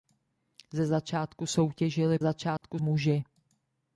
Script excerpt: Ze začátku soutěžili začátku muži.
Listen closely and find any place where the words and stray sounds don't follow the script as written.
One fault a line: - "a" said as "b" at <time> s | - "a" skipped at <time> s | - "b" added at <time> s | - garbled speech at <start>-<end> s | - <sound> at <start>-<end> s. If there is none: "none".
- dropout at 2.6-2.6 s